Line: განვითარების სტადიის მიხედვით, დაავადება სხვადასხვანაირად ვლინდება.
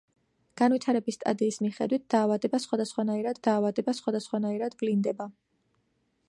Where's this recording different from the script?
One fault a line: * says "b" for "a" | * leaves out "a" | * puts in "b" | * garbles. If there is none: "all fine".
* puts in "დაავადება სხვადასხვანაირად"